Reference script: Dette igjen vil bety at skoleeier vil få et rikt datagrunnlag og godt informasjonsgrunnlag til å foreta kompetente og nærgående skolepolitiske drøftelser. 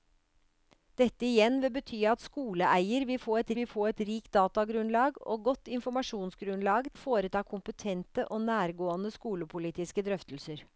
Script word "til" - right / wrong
wrong